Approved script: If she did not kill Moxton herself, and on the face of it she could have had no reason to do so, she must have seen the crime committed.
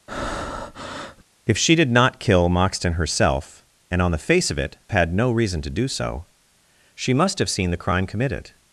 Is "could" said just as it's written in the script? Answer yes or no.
no